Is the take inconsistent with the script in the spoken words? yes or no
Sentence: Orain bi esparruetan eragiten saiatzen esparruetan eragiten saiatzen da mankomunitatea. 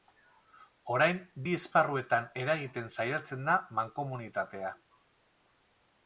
yes